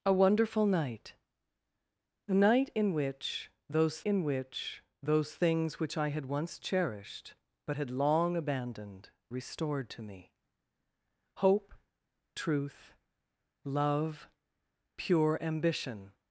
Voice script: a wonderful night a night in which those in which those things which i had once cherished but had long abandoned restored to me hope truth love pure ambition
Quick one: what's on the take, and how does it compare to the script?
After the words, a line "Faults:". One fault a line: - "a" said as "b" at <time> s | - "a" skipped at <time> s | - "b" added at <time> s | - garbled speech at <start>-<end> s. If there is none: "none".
a wonderful night a night in which those in which those things which i had once cherished but had long abandoned restored to me hope truth love pure ambition
Faults:
none